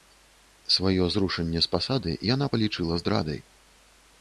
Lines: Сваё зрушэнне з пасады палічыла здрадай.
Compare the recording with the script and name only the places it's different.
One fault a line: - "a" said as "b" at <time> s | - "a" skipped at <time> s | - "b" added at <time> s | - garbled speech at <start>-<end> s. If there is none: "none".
- "яна" added at 2.3 s